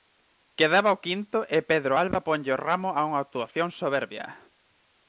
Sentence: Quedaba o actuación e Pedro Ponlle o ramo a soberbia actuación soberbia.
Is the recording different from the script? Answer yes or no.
yes